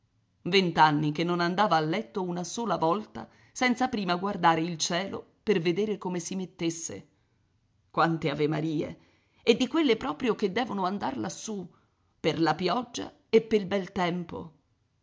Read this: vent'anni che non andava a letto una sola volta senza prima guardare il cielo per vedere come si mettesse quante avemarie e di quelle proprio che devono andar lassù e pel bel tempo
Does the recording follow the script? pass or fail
fail